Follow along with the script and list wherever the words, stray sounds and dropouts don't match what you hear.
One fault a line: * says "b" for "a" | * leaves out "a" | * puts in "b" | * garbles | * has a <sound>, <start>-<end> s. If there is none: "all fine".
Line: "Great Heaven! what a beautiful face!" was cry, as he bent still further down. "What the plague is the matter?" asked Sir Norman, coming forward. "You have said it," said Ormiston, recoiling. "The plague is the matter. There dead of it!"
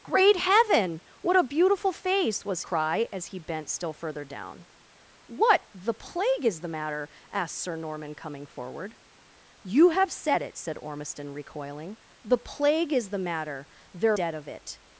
all fine